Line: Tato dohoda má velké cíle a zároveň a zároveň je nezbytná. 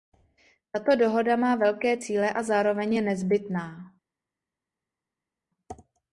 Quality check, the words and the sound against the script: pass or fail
fail